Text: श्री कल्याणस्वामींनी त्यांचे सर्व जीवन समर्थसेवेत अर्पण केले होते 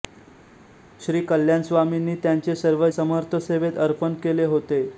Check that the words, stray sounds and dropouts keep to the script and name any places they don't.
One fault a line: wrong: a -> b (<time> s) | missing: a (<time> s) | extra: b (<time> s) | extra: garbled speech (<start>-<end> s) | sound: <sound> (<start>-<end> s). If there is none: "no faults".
missing: जीवन (2.9 s)